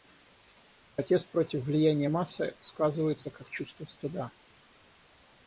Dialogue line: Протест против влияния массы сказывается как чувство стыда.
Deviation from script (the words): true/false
false